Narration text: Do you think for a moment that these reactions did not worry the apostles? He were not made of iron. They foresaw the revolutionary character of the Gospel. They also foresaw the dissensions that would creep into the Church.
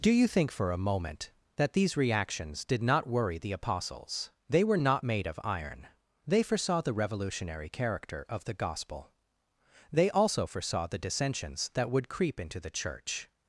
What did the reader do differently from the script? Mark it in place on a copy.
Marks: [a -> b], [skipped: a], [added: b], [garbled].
Do you think for a moment that these reactions did not worry the apostles? [He -> They] were not made of iron. They foresaw the revolutionary character of the Gospel. They also foresaw the dissensions that would creep into the Church.